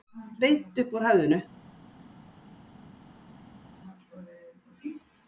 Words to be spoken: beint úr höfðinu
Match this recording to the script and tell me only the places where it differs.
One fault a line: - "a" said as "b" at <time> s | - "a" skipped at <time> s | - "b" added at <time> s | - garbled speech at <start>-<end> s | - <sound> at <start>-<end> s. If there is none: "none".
- "upp" added at 0.8 s